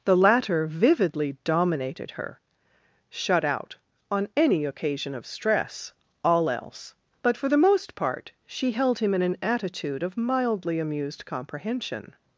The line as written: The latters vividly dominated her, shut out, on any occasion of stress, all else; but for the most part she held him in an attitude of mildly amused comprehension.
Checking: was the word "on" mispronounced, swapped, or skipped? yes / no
no